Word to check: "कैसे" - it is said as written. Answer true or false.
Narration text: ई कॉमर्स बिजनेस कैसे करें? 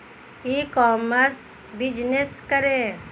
false